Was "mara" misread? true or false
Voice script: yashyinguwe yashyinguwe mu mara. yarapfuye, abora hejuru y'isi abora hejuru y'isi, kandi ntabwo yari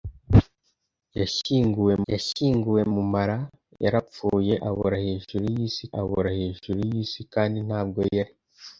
false